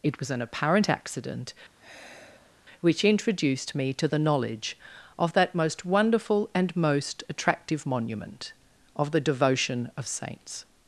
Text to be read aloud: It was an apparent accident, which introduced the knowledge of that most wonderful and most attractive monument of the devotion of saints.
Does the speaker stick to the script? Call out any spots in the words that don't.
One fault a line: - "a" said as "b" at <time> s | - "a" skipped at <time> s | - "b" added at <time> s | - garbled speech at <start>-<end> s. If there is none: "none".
- "me to" added at 3.7 s